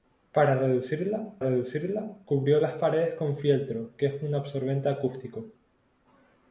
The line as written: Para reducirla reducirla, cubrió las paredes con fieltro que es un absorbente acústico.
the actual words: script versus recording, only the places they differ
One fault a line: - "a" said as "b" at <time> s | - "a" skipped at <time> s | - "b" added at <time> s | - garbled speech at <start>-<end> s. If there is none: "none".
none